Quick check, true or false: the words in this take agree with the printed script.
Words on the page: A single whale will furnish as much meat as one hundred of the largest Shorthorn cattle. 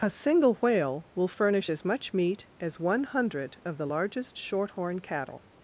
true